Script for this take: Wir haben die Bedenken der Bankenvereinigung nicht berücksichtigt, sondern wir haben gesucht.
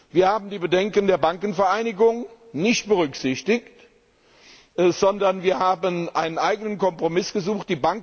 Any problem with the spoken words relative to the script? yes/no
yes